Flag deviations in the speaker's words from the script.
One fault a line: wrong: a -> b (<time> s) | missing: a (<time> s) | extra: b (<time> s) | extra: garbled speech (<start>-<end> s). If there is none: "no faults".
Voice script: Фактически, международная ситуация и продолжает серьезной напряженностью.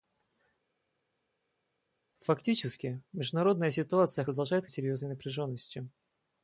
no faults